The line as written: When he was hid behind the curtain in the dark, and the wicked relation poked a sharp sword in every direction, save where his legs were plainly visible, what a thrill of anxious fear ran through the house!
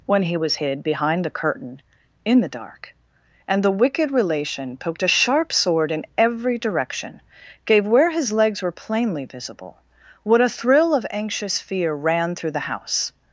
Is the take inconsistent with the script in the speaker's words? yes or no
yes